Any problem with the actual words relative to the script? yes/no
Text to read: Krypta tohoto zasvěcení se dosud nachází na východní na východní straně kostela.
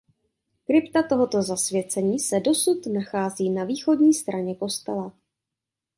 yes